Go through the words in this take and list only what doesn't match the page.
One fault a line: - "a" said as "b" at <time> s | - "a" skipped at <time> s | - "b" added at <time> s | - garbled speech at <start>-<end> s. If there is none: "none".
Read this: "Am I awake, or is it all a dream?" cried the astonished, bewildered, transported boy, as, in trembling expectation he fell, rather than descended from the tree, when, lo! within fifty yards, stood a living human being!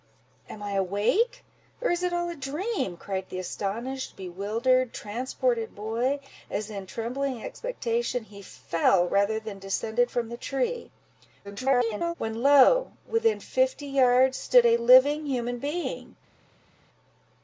- garbled speech at 11.4-12.1 s